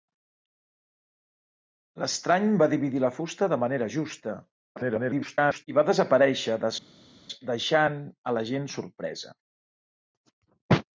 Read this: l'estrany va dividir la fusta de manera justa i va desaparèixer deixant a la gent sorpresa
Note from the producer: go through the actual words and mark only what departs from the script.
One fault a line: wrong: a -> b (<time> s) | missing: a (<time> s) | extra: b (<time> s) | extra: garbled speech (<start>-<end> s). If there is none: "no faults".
extra: garbled speech (4.8-5.7 s)